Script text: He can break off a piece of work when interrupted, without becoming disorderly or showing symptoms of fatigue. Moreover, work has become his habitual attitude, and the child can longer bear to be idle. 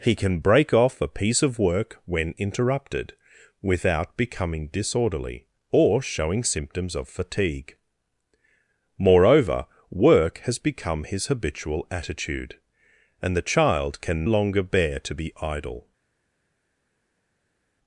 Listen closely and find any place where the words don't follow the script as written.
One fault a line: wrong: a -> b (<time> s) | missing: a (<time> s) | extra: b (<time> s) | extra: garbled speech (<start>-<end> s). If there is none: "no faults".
no faults